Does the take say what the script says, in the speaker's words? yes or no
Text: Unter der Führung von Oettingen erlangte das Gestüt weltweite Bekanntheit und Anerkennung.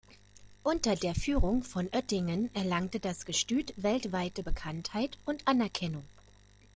yes